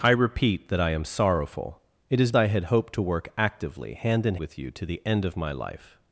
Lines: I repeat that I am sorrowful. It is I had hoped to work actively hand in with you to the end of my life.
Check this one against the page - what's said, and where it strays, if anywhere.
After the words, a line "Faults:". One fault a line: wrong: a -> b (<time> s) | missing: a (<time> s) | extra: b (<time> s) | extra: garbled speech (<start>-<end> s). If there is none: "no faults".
I repeat that I am sorrowful. It is I had hoped to work actively hand in with you to the end of my life.
Faults:
no faults